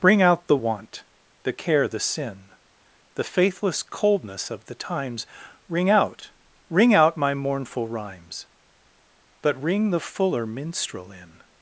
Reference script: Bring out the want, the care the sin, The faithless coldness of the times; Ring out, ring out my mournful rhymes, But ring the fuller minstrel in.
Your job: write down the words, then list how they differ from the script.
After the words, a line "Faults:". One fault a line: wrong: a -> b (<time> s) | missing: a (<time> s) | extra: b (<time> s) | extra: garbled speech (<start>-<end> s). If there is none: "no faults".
Bring out the want, the care the sin, The faithless coldness of the times; Ring out, ring out my mournful rhymes, But ring the fuller minstrel in.
Faults:
no faults